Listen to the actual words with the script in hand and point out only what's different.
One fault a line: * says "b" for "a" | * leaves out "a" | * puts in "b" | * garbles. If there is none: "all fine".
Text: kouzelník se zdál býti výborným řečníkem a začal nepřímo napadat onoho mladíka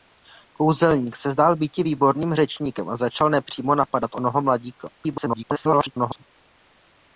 * garbles